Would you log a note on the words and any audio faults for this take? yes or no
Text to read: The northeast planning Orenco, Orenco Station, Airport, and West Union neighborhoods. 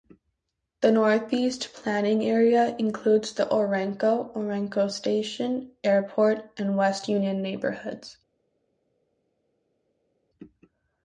yes